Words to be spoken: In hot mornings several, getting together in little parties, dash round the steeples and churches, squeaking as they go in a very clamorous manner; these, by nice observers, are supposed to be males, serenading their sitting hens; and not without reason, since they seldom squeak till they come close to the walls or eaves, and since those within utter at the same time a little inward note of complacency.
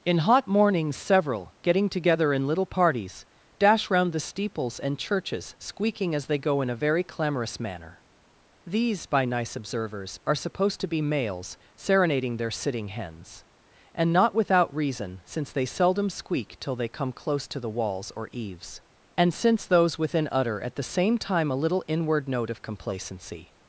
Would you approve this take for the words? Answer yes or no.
yes